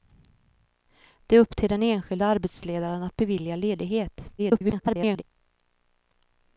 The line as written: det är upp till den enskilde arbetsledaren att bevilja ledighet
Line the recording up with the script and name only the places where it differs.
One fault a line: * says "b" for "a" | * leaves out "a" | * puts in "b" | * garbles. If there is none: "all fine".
* garbles